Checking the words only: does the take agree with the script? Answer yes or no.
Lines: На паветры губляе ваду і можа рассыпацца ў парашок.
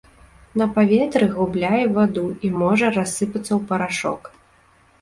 yes